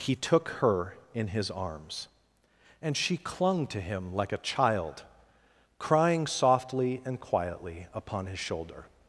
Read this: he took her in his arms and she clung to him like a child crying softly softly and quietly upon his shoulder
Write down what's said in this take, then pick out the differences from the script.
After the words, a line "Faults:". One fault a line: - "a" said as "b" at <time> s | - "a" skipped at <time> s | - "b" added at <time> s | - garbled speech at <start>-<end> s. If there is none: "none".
he took her in his arms and she clung to him like a child crying softly and quietly upon his shoulder
Faults:
- "softly" skipped at 7.0 s